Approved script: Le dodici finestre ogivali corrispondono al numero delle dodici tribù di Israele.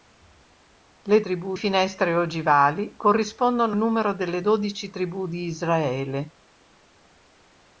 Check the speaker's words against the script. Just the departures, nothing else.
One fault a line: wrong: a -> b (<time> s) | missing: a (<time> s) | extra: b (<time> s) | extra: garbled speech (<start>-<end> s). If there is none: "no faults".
wrong: dodici -> tribù (1.2 s)
missing: al (3.8 s)